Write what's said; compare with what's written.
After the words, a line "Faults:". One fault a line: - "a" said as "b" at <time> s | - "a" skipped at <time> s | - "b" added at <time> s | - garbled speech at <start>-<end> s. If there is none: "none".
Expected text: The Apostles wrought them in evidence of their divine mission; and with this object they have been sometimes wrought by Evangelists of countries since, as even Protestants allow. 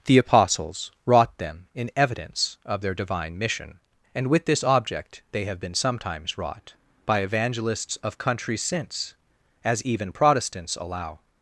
The Apostles wrought them in evidence of their divine mission; and with this object they have been sometimes wrought by Evangelists of countries since, as even Protestants allow.
Faults:
none